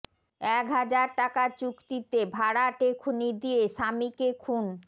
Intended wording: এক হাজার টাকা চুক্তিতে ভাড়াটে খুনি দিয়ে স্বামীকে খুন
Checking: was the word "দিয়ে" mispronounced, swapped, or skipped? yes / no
no